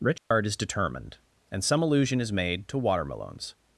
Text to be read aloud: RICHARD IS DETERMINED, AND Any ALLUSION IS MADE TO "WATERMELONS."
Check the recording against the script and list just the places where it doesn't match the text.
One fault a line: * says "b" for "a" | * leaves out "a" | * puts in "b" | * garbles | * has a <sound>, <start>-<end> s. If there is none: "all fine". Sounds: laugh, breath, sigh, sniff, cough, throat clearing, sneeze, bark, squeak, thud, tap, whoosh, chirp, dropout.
* has a dropout, 0.2-0.3 s
* says "SOME" for "Any"